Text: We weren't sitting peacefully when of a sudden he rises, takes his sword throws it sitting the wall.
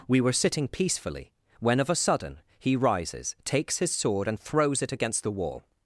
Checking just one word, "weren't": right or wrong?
wrong